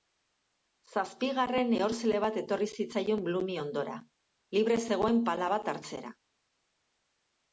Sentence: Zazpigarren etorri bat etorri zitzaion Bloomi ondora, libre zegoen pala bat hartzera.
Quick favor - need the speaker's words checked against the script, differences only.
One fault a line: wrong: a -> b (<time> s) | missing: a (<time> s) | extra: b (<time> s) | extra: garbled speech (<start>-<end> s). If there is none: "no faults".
wrong: etorri -> ehorzle (1.8 s)